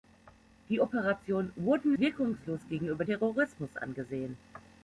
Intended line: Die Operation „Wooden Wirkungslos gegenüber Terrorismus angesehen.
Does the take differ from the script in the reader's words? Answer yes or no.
no